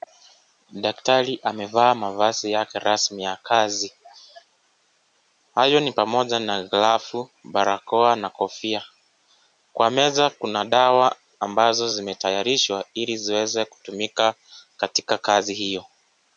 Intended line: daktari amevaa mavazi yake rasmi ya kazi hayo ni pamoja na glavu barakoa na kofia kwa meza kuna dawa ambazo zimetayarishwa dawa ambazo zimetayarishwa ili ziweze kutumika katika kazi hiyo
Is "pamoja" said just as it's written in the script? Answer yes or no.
yes